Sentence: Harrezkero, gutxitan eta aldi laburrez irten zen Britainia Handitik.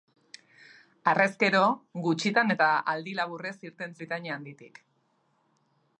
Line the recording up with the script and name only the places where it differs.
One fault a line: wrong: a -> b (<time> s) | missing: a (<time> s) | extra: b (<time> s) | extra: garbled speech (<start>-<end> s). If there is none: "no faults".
missing: zen (4.0 s)